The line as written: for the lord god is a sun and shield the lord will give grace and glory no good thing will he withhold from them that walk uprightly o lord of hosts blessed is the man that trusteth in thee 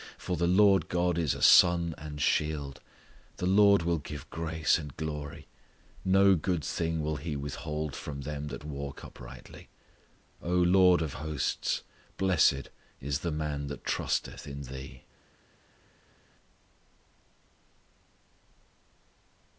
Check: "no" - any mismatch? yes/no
no